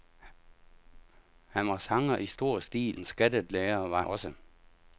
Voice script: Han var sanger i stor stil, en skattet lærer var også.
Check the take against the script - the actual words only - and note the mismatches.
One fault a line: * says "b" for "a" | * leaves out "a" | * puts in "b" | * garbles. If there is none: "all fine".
all fine